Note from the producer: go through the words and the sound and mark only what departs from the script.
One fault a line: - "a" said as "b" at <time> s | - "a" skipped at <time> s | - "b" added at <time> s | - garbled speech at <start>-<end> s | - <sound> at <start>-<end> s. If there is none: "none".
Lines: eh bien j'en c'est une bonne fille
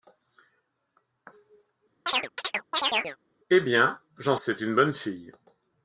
- chirp at 2.1-3.2 s